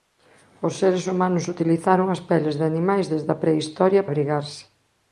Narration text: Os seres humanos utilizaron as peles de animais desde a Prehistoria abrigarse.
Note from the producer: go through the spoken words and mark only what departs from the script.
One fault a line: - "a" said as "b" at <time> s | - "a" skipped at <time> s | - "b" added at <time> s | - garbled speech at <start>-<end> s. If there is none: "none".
none